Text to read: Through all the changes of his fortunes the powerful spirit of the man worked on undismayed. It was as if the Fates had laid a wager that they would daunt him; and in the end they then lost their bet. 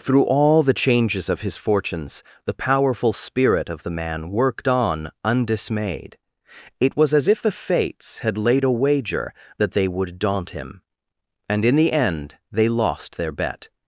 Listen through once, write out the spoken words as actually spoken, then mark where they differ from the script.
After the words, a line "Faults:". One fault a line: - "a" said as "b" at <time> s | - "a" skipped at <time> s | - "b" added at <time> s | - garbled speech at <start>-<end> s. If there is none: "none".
Through all the changes of his fortunes the powerful spirit of the man worked on undismayed. It was as if the Fates had laid a wager that they would daunt him; and in the end they lost their bet.
Faults:
- "then" skipped at 12.7 s